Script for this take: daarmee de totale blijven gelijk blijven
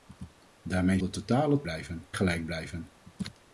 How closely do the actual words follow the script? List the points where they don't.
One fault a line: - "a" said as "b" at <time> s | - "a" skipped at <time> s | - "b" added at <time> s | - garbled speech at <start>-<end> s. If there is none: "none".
none